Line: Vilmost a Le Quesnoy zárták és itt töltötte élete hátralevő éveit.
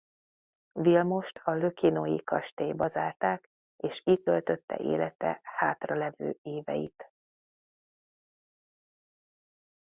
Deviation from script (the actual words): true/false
true